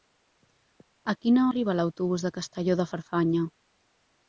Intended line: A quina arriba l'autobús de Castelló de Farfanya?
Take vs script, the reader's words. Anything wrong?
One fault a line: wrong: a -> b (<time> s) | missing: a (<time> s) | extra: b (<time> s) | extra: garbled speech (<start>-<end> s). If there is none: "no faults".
no faults